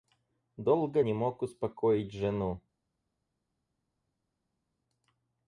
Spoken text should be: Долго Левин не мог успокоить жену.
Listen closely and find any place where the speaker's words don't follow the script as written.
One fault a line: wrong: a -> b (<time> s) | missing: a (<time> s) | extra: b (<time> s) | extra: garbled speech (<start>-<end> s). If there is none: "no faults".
missing: Левин (1.0 s)